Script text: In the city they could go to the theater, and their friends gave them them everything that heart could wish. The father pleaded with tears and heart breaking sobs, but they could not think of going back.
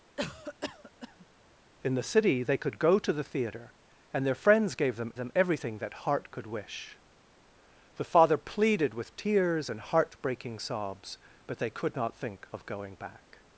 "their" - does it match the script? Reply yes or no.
yes